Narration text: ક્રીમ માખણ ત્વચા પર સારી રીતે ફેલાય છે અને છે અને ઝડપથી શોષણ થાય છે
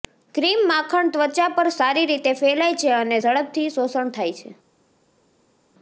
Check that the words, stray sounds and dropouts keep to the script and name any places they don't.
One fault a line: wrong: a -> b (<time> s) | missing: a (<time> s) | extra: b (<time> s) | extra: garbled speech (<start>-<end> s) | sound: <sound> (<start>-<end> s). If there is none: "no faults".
missing: છે અને (3.2 s)